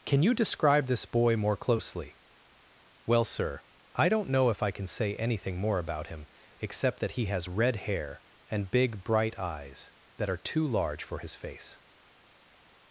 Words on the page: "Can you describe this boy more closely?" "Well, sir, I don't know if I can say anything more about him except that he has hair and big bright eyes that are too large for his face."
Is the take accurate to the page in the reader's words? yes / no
no